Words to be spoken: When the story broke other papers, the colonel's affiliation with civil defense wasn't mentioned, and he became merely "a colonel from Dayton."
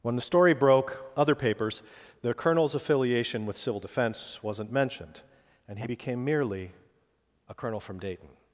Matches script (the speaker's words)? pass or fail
pass